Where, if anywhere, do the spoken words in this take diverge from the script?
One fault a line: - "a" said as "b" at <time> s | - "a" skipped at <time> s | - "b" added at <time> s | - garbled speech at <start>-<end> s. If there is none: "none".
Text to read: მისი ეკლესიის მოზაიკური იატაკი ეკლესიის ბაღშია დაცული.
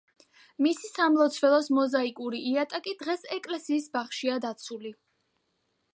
- "ეკლესიის" said as "სამლოცველოს" at 0.9 s
- "დღეს" added at 3.0 s